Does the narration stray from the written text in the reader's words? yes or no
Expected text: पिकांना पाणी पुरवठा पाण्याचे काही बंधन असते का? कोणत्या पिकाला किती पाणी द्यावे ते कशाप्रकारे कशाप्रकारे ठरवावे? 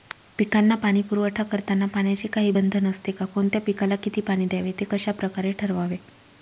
yes